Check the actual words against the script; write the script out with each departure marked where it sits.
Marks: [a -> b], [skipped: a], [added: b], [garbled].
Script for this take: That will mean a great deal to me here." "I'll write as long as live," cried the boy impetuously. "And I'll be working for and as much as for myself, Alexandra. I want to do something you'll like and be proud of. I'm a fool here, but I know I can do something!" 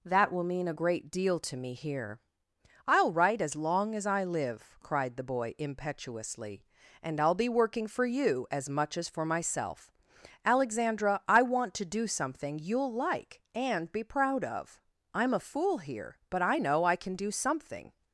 That will mean a great deal to me here." "I'll write as long as [added: I] live," cried the boy impetuously. "And I'll be working for [and -> you] as much as for myself, Alexandra. I want to do something you'll like and be proud of. I'm a fool here, but I know I can do something!"